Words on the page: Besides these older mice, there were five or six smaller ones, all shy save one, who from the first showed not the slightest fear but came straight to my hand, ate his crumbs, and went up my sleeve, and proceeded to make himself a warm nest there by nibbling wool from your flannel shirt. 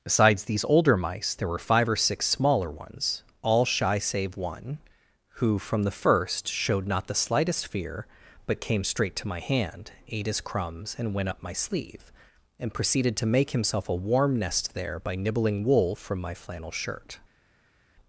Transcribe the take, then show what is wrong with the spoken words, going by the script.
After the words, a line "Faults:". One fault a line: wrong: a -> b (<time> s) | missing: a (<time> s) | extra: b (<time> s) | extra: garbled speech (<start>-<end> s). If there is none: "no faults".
Besides these older mice, there were five or six smaller ones, all shy save one, who from the first showed not the slightest fear but came straight to my hand, ate his crumbs, and went up my sleeve, and proceeded to make himself a warm nest there by nibbling wool from my flannel shirt.
Faults:
wrong: your -> my (16.2 s)